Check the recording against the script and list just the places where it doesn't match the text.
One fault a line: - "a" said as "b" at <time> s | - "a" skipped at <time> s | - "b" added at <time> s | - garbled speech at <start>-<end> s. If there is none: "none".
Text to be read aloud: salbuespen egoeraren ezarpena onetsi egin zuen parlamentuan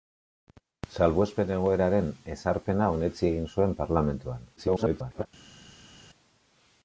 - garbled speech at 4.6-5.3 s